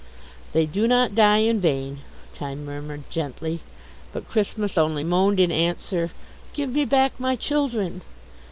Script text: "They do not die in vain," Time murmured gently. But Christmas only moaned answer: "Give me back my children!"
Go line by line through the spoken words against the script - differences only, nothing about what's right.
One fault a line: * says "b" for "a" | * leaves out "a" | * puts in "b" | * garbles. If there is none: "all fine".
* puts in "in"